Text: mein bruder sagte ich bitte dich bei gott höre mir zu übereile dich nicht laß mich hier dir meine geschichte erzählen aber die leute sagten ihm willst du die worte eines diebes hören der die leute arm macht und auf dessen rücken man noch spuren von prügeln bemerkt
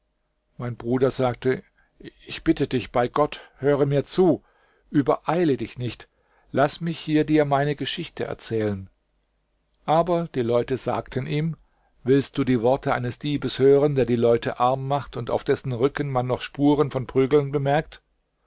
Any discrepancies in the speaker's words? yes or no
no